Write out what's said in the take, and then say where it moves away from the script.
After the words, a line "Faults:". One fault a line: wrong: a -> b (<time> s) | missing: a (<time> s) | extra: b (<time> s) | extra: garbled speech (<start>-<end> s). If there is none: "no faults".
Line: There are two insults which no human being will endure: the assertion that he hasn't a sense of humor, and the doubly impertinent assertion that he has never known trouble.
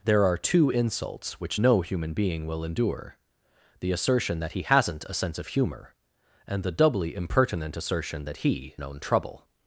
There are two insults which no human being will endure: the assertion that he hasn't a sense of humor, and the doubly impertinent assertion that he known trouble.
Faults:
missing: has never (8.8 s)